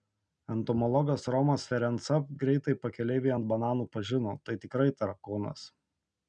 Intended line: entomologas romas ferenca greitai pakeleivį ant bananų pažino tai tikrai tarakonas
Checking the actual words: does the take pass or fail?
pass